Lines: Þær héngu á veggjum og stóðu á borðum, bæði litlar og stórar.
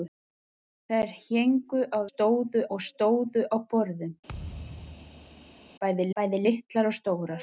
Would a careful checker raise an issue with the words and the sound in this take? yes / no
yes